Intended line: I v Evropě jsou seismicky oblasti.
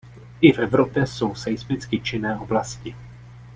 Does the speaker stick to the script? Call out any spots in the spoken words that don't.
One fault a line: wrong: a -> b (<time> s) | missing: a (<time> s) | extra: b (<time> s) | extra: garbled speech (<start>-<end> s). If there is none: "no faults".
extra: činné (2.0 s)